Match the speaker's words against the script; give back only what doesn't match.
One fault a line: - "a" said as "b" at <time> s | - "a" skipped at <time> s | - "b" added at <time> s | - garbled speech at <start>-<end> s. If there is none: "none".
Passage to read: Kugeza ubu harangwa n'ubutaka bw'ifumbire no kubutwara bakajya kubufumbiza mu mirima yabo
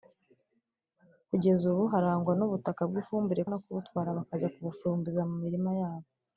none